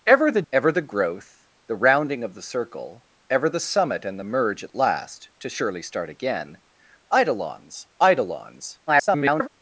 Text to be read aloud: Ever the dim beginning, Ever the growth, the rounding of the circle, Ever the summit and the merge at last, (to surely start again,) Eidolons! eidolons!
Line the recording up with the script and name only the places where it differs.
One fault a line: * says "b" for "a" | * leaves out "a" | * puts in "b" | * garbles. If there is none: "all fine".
* leaves out "dim beginning"
* garbles